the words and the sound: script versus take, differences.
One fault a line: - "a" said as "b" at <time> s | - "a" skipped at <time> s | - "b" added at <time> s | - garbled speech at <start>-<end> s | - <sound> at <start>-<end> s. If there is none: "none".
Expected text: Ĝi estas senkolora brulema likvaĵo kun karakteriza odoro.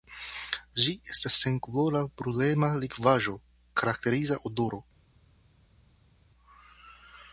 - "kun" skipped at 3.4 s